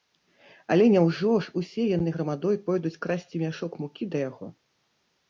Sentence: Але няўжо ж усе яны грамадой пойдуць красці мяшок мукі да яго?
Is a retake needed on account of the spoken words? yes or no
no